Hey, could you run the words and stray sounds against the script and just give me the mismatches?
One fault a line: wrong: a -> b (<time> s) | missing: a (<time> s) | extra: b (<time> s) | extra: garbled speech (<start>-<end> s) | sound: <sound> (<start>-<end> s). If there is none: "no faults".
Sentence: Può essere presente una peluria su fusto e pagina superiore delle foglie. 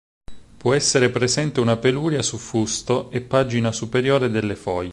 no faults